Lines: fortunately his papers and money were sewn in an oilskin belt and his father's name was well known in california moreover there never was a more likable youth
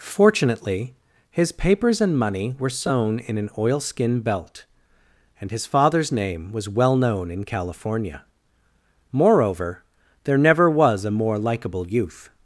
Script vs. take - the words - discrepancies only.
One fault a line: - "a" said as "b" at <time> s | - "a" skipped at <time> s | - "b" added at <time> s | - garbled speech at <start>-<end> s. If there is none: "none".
none